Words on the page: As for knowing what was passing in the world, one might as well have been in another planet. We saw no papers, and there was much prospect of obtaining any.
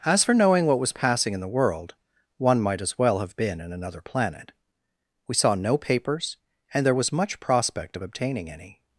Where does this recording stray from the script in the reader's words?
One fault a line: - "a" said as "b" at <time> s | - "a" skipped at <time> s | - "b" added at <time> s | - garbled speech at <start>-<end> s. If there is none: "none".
none